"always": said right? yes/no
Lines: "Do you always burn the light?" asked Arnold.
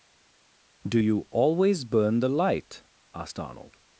yes